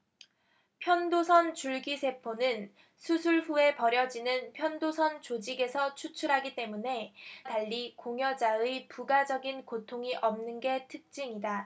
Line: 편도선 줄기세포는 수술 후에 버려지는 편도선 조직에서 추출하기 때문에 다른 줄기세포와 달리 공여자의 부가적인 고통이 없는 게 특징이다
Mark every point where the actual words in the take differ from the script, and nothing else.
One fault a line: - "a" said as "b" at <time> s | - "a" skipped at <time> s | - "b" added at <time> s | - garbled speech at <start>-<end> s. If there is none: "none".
- "다른 줄기세포와" skipped at 7.1 s